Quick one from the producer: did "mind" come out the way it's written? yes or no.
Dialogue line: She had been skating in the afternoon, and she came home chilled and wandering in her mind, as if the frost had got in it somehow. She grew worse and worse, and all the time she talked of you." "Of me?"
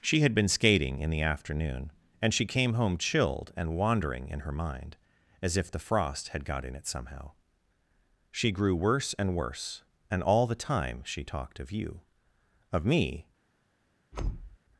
yes